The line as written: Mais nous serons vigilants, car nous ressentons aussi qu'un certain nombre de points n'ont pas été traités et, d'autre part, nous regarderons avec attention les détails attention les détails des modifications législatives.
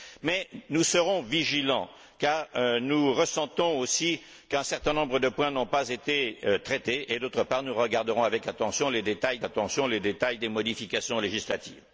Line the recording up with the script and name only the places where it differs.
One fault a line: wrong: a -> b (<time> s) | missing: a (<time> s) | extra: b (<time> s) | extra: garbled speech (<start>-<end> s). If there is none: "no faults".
no faults